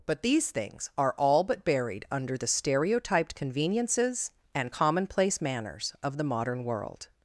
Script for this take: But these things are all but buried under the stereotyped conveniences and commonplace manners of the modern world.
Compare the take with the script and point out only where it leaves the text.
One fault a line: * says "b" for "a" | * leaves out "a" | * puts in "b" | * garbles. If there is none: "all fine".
all fine